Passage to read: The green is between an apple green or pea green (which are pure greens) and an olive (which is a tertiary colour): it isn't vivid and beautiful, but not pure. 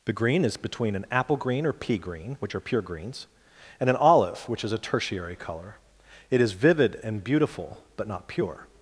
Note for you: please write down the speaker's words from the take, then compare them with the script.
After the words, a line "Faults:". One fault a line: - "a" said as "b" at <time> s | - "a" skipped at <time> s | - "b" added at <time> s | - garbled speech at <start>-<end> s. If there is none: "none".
The green is between an apple green or pea green (which are pure greens) and an olive (which is a tertiary colour): it is vivid and beautiful, but not pure.
Faults:
- "isn't" said as "is" at 6.4 s